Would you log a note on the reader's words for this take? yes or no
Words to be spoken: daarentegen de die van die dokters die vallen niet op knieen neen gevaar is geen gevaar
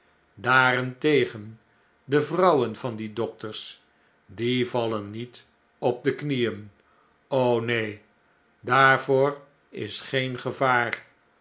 yes